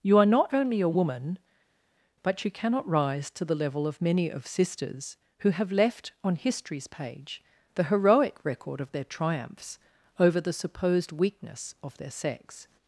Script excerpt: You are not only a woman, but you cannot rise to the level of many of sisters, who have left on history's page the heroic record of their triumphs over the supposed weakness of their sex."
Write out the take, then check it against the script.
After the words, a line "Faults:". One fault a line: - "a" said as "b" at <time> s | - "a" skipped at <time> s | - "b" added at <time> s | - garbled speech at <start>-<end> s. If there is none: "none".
You are not only a woman, but you cannot rise to the level of many of sisters, who have left on history's page the heroic record of their triumphs over the supposed weakness of their sex."
Faults:
none